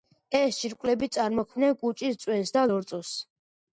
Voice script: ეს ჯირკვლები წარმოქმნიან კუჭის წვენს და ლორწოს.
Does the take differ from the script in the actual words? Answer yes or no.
no